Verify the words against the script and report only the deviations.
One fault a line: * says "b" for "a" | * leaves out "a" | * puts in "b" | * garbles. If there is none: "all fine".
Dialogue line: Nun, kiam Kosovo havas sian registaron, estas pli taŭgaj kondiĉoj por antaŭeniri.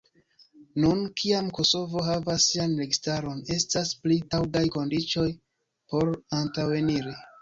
all fine